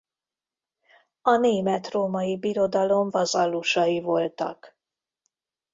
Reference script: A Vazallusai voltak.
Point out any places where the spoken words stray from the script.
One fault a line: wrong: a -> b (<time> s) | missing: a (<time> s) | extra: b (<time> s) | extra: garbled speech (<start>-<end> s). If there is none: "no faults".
extra: Német római Birodalom (1.4 s)